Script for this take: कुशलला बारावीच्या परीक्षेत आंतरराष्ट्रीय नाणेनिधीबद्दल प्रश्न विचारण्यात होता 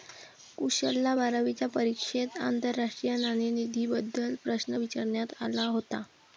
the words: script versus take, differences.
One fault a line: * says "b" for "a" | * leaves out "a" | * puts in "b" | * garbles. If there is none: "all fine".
* puts in "आला"